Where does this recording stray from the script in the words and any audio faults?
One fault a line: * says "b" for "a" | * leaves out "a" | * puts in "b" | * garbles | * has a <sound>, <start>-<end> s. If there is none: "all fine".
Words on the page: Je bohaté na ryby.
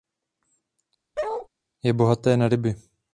* has a bark, 1.2-1.5 s